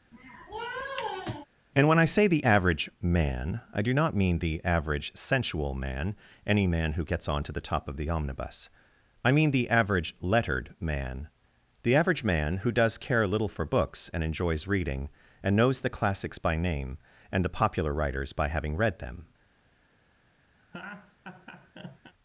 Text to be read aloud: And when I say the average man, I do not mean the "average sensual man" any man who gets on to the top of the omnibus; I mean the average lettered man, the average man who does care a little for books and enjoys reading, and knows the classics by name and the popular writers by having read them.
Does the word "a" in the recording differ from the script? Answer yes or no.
yes